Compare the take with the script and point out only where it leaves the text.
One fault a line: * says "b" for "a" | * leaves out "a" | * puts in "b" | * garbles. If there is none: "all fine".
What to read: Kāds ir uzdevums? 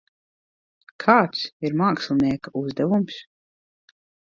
* puts in "mākslinieka"